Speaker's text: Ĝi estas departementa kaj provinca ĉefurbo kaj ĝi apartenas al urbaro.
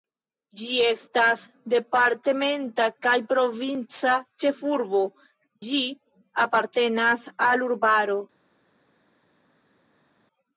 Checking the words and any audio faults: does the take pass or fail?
fail